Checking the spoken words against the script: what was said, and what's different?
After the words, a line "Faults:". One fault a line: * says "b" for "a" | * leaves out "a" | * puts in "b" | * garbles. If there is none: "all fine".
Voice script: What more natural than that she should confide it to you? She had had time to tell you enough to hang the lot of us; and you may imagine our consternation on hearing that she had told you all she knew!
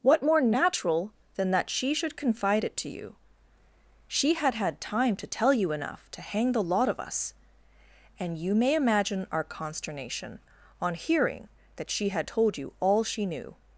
What more natural than that she should confide it to you? She had had time to tell you enough to hang the lot of us; and you may imagine our consternation on hearing that she had told you all she knew!
Faults:
all fine